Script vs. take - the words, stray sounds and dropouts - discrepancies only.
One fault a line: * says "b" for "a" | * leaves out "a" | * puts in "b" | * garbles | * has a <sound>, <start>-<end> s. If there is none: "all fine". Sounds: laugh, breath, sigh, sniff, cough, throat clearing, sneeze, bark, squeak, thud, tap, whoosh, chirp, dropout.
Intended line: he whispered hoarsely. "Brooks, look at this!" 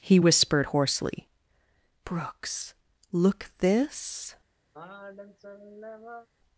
* leaves out "at"
* has a sigh, 4.7-6.3 s